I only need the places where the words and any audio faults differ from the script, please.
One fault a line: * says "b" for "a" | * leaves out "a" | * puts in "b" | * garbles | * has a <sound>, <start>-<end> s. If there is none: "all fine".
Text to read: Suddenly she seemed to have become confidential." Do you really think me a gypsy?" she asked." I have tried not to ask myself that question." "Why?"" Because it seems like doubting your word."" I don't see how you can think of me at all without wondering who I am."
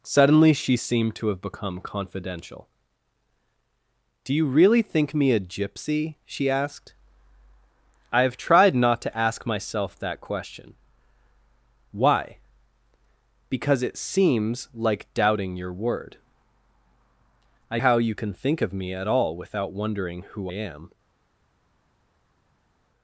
* leaves out "don't see"
* leaves out "I"